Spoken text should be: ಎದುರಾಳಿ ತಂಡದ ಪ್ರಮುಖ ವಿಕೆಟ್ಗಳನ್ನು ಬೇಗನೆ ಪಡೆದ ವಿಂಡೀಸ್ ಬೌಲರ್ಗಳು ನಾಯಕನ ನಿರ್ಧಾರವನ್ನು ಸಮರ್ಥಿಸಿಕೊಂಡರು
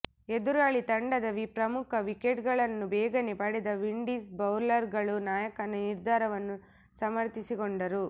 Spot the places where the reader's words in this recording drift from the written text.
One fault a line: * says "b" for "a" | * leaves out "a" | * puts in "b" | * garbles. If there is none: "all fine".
all fine